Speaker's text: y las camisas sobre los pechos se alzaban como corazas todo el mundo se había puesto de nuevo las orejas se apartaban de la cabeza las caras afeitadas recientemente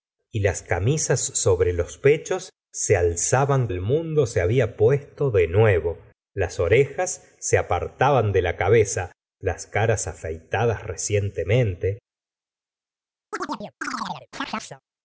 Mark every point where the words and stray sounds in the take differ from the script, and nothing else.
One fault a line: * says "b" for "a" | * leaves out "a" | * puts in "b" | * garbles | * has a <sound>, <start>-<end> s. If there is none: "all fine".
* leaves out "como corazas todo"
* has a chirp, 13.3-14.8 s